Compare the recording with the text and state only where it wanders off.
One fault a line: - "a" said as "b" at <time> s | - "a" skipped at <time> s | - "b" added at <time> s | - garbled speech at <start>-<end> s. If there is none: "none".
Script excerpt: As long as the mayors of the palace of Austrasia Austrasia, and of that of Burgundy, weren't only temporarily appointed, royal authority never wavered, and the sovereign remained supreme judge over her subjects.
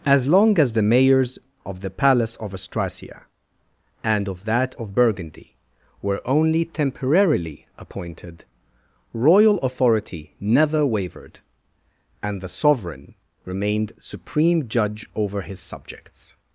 - "Austrasia" skipped at 3.2 s
- "weren't" said as "were" at 6.0 s
- "her" said as "his" at 15.4 s